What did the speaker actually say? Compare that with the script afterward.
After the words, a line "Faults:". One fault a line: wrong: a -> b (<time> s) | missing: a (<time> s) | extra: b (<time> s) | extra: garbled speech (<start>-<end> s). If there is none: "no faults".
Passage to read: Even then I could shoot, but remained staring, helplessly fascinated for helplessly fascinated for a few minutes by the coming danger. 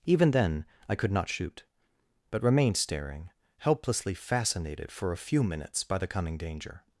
Even then I could not shoot, but remained staring, helplessly fascinated for a few minutes by the coming danger.
Faults:
extra: not (1.1 s)
missing: helplessly fascinated for (5.1 s)